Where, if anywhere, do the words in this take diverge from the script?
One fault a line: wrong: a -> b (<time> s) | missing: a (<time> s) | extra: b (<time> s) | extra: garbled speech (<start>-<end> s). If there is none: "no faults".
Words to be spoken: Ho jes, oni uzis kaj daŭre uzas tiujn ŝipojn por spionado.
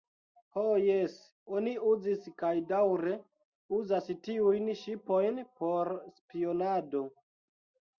no faults